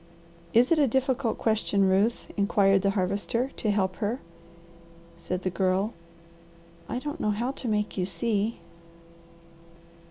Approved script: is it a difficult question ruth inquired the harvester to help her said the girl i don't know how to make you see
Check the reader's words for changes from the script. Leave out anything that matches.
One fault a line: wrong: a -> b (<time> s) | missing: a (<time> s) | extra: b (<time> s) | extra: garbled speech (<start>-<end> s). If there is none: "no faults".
no faults